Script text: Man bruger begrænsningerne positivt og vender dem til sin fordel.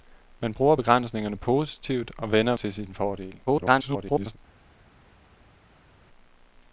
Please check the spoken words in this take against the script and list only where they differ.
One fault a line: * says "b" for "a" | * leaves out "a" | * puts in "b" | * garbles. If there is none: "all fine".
* leaves out "dem"
* garbles